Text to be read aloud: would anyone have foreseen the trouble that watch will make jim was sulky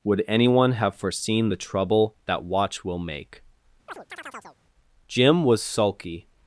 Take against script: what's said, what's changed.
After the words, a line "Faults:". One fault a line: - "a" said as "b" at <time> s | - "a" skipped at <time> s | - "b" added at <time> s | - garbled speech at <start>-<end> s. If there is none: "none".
would anyone have foreseen the trouble that watch will make jim was sulky
Faults:
none